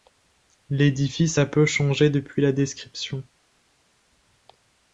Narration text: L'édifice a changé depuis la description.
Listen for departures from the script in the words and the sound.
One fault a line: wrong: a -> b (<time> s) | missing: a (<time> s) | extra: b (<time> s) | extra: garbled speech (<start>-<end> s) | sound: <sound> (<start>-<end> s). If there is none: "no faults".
extra: peu (1.4 s)